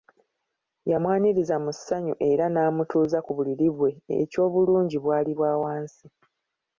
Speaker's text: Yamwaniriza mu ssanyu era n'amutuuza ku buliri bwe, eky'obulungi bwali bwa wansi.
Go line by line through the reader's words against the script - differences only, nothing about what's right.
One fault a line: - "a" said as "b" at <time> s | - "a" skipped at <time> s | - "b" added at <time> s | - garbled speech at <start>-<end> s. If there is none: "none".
none